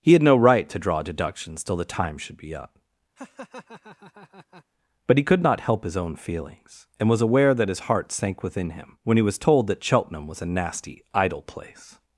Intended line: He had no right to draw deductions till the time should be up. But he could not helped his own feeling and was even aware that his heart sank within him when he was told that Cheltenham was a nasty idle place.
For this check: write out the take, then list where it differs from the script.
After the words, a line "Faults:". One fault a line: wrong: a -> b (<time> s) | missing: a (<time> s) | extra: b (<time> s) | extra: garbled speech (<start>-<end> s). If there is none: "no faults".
He had no right to draw deductions till the time should be up. But he could not help his own feelings and was aware that his heart sank within him when he was told that Cheltenham was a nasty idle place.
Faults:
wrong: helped -> help (5.6 s)
wrong: feeling -> feelings (6.2 s)
missing: even (7.2 s)